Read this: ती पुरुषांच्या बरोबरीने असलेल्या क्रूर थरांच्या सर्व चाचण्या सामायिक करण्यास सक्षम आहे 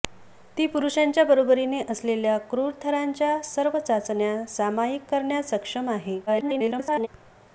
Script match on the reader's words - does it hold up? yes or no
no